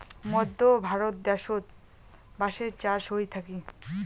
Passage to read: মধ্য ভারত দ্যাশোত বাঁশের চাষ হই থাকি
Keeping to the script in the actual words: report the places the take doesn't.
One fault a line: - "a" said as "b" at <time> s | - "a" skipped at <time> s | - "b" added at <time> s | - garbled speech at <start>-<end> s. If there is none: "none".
none